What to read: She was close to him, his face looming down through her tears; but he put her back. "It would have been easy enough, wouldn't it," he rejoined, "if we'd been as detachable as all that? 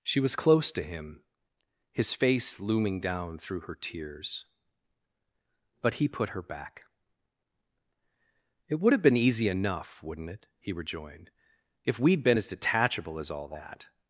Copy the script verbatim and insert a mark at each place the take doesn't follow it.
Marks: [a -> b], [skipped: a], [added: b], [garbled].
She was close to him, his face looming down through her tears; but he put her back. "It would have been easy enough, wouldn't it," he rejoined, "if we'd been as detachable as all that?